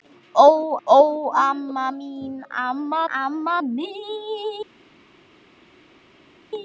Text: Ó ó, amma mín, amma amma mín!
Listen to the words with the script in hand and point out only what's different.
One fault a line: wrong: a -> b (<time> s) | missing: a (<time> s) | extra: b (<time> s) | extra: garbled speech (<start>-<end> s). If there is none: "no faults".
no faults